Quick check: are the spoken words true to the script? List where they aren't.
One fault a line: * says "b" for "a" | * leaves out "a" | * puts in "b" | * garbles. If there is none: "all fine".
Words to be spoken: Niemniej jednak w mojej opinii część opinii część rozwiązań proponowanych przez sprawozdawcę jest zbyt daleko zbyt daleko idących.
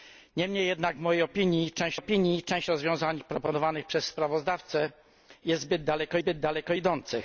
all fine